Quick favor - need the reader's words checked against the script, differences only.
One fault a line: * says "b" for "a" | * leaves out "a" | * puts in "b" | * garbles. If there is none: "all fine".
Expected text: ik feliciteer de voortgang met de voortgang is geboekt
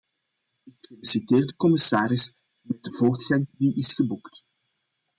* says "commissaris" for "voortgang"
* puts in "die"